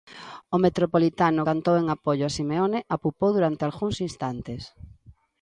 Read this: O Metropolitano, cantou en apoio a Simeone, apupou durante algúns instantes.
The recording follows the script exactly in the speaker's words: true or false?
true